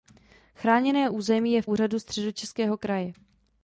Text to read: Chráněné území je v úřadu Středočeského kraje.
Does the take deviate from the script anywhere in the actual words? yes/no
no